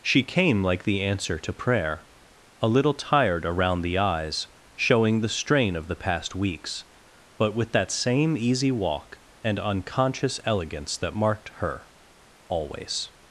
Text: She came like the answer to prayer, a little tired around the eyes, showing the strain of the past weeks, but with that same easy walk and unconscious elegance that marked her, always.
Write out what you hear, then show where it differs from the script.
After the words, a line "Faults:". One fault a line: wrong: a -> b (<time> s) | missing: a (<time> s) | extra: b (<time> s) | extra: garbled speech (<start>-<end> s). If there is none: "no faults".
She came like the answer to prayer, a little tired around the eyes, showing the strain of the past weeks, but with that same easy walk and unconscious elegance that marked her, always.
Faults:
no faults